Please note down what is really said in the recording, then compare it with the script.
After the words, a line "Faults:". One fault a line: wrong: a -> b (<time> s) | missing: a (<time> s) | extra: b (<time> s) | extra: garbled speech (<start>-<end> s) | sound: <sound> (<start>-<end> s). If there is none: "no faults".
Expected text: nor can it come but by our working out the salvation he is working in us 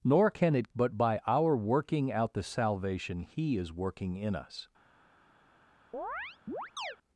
nor can it but by our working out the salvation he is working in us
Faults:
missing: come (0.7 s)
sound: chirp (5.9-7.0 s)